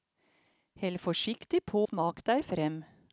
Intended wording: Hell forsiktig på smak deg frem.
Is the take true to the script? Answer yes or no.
yes